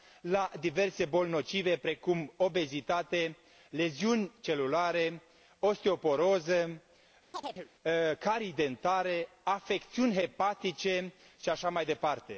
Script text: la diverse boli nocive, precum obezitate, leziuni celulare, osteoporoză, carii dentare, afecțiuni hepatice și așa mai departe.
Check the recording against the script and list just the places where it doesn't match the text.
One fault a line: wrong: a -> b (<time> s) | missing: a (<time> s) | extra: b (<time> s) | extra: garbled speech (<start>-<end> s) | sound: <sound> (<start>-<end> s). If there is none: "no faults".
sound: chirp (7.3-7.7 s)